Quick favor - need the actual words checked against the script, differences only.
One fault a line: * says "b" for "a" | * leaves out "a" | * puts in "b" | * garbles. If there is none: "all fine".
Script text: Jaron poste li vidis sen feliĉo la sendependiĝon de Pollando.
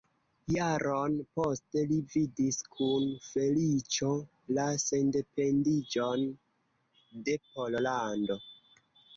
* says "kun" for "sen"